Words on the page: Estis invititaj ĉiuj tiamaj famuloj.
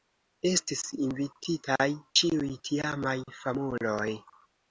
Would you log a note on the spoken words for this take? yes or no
no